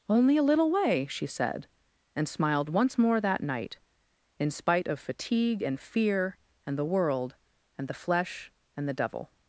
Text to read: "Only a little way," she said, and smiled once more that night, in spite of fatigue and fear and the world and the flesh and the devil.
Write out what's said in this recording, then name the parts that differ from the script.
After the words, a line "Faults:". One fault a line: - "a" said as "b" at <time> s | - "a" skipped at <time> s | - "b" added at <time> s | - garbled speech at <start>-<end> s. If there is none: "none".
"Only a little way," she said, and smiled once more that night, in spite of fatigue and fear and the world and the flesh and the devil.
Faults:
none